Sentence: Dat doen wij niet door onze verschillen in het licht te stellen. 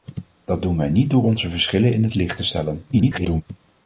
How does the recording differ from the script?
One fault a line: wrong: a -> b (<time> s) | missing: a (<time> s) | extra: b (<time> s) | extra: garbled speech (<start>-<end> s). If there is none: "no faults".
extra: garbled speech (2.9-3.4 s)